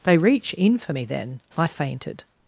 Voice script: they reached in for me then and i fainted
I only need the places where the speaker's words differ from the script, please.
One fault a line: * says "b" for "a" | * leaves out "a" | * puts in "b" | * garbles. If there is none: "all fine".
* says "reach" for "reached"
* leaves out "and"